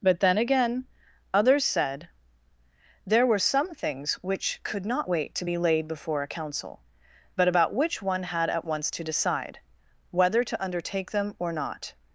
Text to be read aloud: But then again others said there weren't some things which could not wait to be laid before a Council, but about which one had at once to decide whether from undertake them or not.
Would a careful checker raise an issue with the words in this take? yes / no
yes